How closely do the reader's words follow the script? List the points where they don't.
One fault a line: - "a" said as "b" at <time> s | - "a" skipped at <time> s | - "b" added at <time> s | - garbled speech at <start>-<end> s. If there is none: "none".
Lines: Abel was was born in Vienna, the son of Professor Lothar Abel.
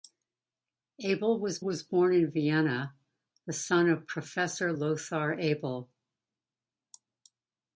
none